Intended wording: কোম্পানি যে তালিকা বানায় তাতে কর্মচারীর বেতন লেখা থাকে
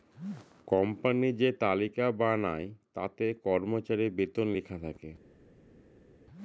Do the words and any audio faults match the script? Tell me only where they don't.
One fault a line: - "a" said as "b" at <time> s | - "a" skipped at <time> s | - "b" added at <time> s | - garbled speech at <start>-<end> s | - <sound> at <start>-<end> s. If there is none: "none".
none